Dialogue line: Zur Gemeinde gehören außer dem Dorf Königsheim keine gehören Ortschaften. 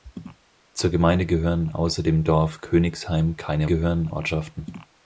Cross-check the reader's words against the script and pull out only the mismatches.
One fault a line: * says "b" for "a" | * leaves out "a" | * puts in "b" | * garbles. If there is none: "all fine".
all fine